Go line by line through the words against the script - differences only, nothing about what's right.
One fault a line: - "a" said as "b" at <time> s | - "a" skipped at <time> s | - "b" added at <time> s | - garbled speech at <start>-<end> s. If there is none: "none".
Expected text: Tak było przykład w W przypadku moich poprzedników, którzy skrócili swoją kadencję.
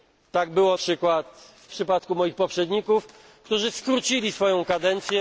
none